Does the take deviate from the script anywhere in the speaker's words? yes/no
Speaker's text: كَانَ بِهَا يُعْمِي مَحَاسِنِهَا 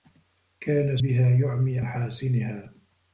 no